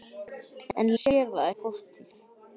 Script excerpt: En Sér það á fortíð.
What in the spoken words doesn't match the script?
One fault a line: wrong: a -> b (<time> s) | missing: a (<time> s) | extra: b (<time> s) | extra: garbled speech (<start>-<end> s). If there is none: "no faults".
no faults